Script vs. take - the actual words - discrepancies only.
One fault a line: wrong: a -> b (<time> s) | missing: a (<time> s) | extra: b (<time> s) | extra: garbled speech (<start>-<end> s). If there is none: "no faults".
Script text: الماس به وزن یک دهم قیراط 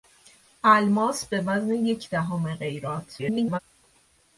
extra: garbled speech (3.2-3.6 s)